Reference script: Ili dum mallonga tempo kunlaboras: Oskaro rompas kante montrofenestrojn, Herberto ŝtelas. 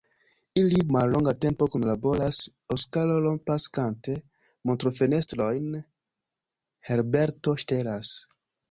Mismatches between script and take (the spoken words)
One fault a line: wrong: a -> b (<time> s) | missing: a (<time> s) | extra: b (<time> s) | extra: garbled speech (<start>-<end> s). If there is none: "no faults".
missing: dum (0.8 s)